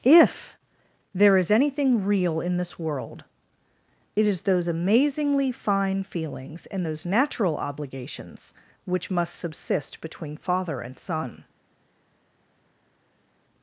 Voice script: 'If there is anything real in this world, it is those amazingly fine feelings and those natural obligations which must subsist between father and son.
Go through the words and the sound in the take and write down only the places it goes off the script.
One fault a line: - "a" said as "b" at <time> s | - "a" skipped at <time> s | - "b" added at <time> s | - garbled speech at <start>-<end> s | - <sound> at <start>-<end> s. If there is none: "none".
none